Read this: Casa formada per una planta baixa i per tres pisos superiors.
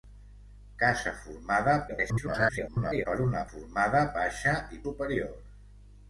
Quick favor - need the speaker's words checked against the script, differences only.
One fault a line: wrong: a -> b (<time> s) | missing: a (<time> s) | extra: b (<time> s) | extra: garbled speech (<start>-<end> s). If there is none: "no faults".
extra: garbled speech (1.9-3.1 s)
wrong: planta -> formada (3.5 s)
missing: per tres pisos (4.8 s)